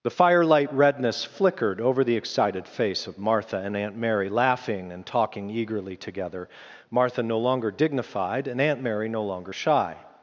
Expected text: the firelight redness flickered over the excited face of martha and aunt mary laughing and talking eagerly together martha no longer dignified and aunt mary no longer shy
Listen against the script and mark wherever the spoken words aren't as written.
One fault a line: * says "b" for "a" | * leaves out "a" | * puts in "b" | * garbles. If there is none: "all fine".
all fine